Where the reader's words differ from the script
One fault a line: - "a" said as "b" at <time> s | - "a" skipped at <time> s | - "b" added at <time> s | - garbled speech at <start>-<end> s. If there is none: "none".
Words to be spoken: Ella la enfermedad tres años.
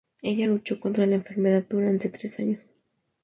- "luchó contra" added at 0.5 s
- "durante" added at 1.7 s